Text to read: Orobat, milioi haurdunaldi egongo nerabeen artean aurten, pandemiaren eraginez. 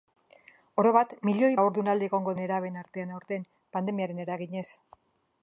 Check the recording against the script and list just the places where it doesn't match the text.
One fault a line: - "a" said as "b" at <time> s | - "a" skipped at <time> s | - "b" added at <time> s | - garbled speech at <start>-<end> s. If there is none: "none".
none